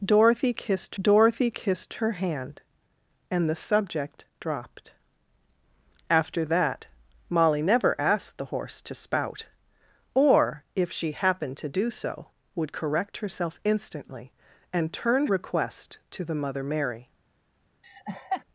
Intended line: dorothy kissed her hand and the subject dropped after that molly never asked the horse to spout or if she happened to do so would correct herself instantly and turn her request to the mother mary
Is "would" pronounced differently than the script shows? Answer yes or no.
no